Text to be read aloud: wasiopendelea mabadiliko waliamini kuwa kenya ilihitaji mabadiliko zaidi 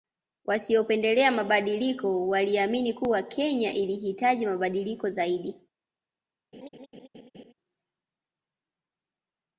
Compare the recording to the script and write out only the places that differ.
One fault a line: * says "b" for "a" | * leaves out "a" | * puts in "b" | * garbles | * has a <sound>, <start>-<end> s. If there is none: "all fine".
* has a laugh, 6.5-7.5 s